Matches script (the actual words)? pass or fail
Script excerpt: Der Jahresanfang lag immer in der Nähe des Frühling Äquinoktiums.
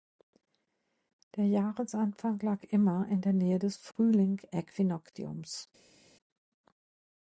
pass